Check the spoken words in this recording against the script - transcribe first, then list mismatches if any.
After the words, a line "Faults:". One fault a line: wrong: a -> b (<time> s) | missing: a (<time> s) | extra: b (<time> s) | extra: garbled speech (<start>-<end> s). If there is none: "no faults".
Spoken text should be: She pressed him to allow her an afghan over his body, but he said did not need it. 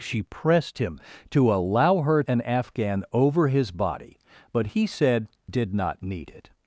She pressed him to allow her an afghan over his body, but he said did not need it.
Faults:
no faults